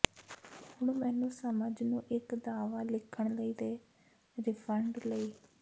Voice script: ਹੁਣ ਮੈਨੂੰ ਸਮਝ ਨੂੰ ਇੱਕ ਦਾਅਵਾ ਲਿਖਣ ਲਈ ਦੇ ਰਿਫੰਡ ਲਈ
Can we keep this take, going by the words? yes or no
yes